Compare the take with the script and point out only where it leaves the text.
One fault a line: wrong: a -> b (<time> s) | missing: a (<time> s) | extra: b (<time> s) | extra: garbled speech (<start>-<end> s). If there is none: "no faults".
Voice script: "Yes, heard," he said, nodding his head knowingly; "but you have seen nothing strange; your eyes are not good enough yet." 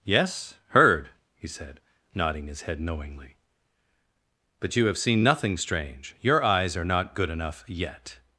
no faults